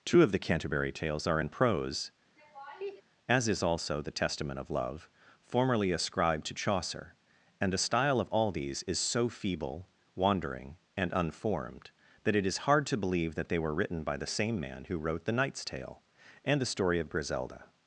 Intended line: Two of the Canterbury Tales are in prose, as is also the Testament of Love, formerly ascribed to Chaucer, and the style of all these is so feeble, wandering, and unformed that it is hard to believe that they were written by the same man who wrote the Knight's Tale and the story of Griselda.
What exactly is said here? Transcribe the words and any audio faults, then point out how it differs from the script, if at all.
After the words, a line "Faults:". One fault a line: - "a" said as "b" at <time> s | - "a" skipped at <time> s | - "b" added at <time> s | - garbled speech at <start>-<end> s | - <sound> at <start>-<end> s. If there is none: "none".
Two of the Canterbury Tales are in prose, as is also the Testament of Love, formerly ascribed to Chaucer, and the style of all these is so feeble, wandering, and unformed that it is hard to believe that they were written by the same man who wrote the Knight's Tale and the story of Griselda.
Faults:
- laugh at 2.4-3.0 s